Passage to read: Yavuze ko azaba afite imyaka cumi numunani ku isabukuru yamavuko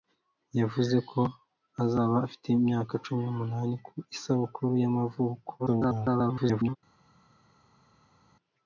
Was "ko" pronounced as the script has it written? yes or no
yes